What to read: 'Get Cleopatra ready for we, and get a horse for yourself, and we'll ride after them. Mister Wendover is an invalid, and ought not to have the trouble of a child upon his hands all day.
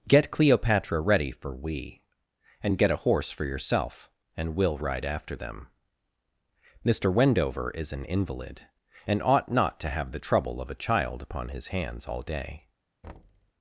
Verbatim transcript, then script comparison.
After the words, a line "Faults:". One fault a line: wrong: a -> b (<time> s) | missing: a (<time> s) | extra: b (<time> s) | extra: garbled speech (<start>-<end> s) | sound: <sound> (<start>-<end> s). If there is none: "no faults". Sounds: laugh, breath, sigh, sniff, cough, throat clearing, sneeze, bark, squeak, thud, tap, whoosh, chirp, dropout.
'Get Cleopatra ready for we, and get a horse for yourself, and we'll ride after them. Mister Wendover is an invalid, and ought not to have the trouble of a child upon his hands all day.
Faults:
sound: thud (13.0-13.5 s)